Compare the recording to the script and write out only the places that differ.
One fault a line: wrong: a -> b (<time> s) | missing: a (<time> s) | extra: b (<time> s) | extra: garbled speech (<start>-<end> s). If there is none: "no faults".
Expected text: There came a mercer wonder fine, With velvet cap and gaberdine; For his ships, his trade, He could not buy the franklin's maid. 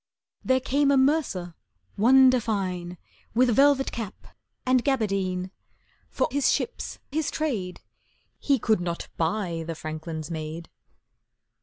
no faults